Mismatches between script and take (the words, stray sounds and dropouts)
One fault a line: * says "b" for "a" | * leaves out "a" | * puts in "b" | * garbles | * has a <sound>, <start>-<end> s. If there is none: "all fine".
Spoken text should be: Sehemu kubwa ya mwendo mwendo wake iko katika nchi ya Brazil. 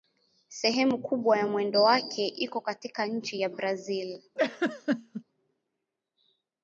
* leaves out "mwendo"
* has a laugh, 4.4-5.2 s